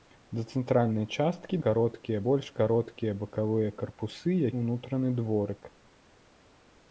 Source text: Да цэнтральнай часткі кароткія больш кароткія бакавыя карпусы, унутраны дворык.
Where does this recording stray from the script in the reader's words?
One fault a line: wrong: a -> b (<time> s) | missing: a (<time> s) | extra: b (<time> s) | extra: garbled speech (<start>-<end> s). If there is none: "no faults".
no faults